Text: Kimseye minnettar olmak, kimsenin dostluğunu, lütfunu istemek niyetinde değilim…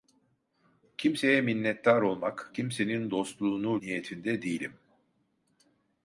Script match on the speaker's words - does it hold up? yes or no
no